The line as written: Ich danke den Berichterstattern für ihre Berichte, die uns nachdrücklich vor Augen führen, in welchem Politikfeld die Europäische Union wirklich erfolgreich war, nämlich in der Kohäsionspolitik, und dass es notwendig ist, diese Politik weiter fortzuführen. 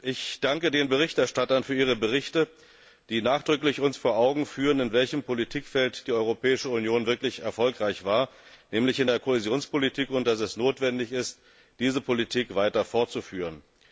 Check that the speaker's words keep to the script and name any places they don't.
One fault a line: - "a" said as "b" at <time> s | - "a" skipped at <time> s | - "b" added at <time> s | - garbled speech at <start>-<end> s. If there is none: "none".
none